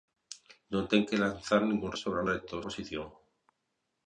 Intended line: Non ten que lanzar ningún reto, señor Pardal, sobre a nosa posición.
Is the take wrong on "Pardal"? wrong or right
wrong